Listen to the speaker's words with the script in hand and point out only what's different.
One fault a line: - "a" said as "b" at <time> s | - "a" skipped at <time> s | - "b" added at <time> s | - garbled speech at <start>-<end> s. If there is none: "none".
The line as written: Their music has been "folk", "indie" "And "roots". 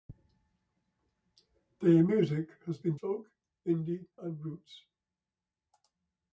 none